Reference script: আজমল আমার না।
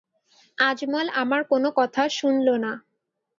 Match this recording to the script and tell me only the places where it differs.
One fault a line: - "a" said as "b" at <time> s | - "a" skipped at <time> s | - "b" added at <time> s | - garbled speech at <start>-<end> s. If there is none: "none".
- "কোনো কথা শুনল" added at 1.5 s